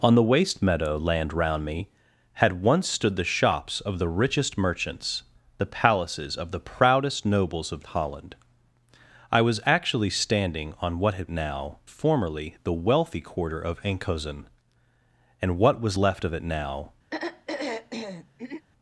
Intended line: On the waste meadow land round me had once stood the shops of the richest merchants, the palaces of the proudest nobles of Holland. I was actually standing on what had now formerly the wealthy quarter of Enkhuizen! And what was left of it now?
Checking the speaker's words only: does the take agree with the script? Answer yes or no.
yes